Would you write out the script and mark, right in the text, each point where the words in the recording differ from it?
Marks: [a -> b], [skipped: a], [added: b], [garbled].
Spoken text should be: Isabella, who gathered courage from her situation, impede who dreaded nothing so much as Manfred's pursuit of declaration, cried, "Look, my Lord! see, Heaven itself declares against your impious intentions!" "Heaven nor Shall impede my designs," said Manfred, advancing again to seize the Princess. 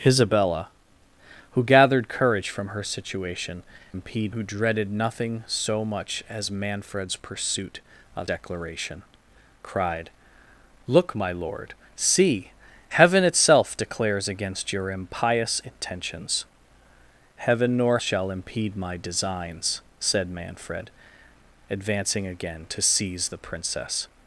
Isabella, who gathered courage from her situation, impede who dreaded nothing so much as Manfred's pursuit of declaration, cried, "Look, my Lord! see, Heaven itself declares against your impious intentions!" "Heaven nor Shall impede my designs," said Manfred, advancing again to seize the Princess.